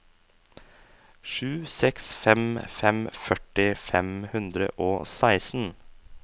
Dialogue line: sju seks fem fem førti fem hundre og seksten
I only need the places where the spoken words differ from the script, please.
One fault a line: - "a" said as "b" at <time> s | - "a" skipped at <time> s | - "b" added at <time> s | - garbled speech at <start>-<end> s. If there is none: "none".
none